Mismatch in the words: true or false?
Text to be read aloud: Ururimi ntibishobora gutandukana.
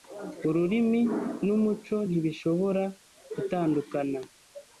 true